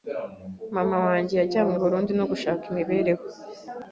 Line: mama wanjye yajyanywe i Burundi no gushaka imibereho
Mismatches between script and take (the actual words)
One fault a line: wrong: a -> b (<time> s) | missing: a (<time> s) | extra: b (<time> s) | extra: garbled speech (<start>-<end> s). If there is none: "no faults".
no faults